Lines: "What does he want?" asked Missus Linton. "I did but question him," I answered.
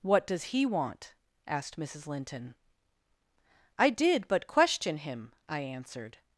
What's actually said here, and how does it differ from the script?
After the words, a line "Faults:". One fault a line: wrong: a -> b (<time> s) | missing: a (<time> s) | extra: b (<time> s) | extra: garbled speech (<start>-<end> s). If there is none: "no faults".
"What does he want?" asked Missus Linton. "I did but question him," I answered.
Faults:
no faults